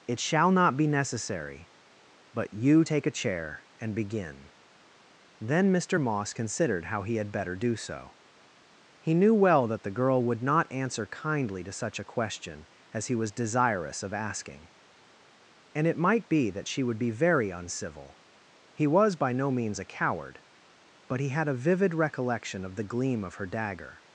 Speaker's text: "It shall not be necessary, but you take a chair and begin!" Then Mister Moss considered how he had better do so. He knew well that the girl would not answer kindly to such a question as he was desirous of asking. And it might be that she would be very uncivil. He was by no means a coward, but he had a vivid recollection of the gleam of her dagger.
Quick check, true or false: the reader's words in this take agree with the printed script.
true